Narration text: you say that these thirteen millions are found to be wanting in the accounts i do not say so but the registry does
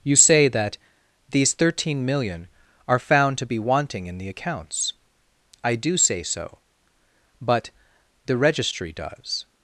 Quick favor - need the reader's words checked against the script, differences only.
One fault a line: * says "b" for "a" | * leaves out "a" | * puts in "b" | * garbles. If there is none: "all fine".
* says "million" for "millions"
* leaves out "not"